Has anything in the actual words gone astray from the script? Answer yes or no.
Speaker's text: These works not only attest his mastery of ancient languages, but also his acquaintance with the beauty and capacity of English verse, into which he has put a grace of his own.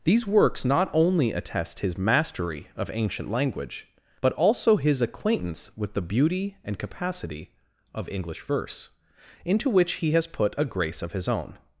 yes